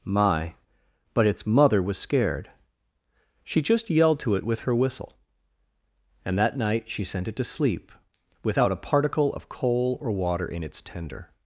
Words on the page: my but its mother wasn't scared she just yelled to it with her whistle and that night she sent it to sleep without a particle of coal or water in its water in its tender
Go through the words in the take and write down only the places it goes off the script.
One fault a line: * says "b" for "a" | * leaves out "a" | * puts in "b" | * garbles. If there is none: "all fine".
* says "was" for "wasn't"
* leaves out "water in its"